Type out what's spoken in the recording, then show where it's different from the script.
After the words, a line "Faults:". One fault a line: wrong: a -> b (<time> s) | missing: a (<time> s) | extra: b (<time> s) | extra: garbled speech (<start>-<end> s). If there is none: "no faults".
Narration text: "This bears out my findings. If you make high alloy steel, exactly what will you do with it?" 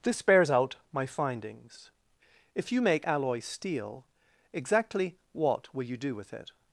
"This bears out my findings. If you make alloy steel, exactly what will you do with it?"
Faults:
missing: high (3.0 s)